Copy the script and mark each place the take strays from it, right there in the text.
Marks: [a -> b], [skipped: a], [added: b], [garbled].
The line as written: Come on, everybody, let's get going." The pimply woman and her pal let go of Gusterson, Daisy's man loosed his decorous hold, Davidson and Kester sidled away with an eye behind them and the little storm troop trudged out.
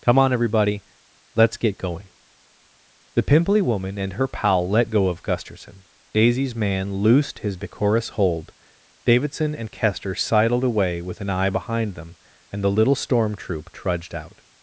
Come on, everybody, let's get going." The pimply woman and her pal let go of Gusterson, Daisy's man loosed his decorous hold, Davidson and Kester sidled away with an eye behind them and the little storm troop trudged out.